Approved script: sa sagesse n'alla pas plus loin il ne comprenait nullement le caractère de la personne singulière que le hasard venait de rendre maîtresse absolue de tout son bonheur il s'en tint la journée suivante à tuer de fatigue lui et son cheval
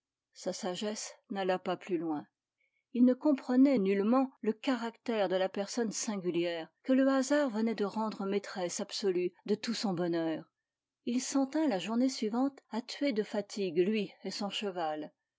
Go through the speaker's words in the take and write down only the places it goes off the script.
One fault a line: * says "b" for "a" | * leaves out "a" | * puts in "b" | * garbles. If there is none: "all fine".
all fine